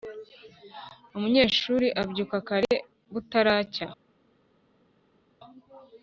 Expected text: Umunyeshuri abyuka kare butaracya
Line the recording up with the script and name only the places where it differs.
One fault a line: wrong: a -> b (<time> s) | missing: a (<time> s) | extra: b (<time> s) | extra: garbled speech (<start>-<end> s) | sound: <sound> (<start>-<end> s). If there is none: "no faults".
no faults